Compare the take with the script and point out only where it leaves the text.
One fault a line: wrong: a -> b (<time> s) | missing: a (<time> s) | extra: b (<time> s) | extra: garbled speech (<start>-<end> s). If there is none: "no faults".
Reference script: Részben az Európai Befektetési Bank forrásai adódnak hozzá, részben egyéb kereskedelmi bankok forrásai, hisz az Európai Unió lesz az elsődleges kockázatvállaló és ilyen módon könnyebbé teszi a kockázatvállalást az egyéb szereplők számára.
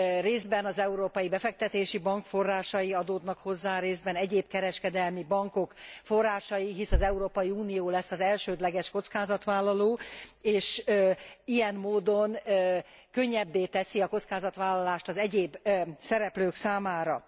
no faults